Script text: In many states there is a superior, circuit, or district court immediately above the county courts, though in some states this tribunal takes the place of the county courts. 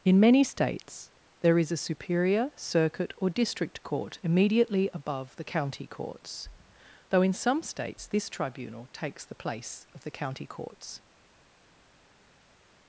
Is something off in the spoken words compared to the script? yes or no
no